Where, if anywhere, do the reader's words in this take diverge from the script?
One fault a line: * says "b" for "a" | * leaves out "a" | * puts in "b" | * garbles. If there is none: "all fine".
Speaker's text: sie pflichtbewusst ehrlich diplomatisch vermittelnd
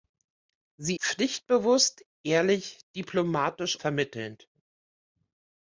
all fine